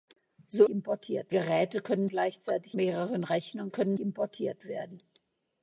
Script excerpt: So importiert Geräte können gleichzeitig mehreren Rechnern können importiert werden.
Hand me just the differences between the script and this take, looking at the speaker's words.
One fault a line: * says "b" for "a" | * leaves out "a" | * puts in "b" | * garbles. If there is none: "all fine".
all fine